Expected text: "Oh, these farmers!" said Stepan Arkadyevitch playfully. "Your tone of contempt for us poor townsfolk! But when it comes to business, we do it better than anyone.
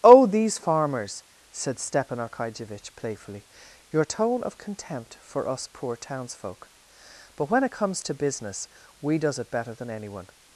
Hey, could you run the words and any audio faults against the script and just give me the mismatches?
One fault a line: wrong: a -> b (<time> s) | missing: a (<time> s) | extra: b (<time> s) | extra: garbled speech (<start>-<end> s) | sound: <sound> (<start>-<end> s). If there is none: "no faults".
wrong: do -> does (9.2 s)